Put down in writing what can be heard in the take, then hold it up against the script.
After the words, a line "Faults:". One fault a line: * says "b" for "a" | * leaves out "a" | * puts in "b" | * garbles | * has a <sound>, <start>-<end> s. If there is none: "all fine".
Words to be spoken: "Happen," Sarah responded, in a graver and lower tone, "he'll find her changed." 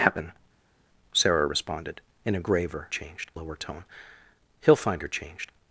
"Happen," Sarah responded, in a graver changed lower tone, "he'll find her changed."
Faults:
* says "changed" for "and"